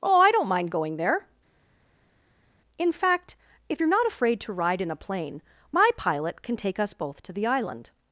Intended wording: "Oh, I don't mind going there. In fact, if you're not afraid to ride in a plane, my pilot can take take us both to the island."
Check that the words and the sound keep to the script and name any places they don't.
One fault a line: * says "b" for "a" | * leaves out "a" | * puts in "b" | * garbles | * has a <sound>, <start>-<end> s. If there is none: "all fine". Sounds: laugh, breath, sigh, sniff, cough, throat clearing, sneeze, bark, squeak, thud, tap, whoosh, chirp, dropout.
* leaves out "take"